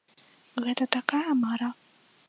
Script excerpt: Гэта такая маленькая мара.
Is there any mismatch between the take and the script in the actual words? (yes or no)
yes